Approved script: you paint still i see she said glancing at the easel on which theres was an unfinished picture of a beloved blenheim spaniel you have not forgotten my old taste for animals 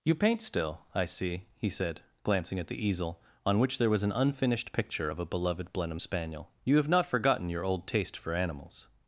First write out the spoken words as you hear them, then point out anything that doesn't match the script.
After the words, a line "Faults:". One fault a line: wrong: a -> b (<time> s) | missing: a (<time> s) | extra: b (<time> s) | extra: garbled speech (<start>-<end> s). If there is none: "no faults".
you paint still i see he said glancing at the easel on which there was an unfinished picture of a beloved blenheim spaniel you have not forgotten your old taste for animals
Faults:
wrong: she -> he (1.6 s)
wrong: theres -> there (3.8 s)
wrong: my -> your (7.5 s)